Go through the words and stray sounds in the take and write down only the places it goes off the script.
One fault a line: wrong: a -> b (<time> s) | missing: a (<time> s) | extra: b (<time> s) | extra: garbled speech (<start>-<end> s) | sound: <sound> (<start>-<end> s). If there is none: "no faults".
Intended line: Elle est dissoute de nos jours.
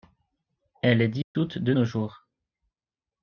sound: dropout (1.2-1.4 s)